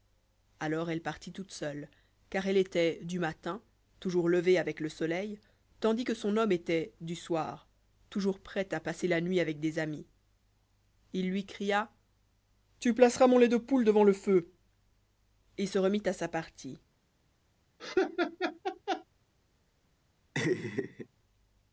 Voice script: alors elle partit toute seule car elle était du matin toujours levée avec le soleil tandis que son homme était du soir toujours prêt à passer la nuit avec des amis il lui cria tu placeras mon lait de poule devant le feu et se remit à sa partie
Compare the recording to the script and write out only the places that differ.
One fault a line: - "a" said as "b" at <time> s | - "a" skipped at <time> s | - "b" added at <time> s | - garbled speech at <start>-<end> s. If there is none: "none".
none